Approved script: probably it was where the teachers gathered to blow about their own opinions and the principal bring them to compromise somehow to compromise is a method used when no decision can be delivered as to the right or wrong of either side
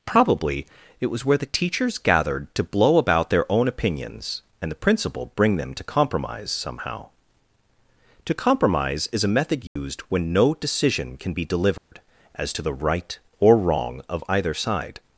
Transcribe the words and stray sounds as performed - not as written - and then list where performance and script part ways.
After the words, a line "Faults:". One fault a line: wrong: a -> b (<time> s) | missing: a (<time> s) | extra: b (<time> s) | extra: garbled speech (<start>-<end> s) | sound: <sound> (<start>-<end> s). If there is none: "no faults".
probably it was where the teachers gathered to blow about their own opinions and the principal bring them to compromise somehow to compromise is a method used when no decision can be delivered as to the right or wrong of either side
Faults:
sound: dropout (9.7-9.8 s)
sound: dropout (11.8-11.9 s)